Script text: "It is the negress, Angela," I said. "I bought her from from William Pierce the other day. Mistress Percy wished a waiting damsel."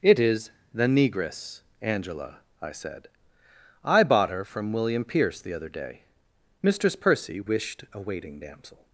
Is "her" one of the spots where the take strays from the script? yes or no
no